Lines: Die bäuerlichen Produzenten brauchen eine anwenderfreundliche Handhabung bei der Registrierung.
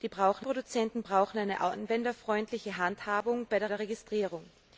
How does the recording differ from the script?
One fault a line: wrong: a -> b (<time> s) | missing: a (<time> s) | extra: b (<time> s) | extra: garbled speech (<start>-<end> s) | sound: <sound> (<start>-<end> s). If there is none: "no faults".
wrong: bäuerlichen -> brauchen (0.1 s)
extra: der (3.7 s)